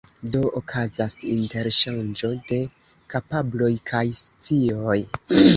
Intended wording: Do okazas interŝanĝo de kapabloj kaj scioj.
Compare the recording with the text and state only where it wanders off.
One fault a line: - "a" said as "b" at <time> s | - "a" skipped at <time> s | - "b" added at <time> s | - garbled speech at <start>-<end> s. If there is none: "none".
none